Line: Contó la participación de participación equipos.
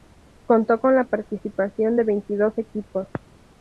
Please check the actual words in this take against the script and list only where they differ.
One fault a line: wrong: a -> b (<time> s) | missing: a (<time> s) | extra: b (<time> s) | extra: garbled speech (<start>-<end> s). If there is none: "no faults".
extra: con (0.8 s)
wrong: participación -> veintidós (2.0 s)